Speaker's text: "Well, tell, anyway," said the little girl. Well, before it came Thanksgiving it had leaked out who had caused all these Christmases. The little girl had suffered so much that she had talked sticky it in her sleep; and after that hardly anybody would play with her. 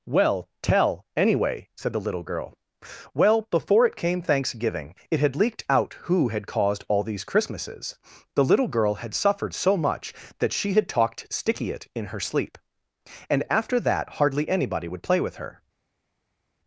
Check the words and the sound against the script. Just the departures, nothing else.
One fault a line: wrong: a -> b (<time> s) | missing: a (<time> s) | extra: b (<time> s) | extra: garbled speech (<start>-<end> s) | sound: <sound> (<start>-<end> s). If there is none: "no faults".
no faults